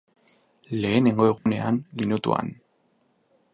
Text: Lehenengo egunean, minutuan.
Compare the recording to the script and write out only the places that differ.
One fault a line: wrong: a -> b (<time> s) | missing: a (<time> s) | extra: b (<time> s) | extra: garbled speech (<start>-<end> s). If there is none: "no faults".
no faults